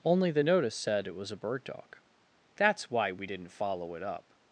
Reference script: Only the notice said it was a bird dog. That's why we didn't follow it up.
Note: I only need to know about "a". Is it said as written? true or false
true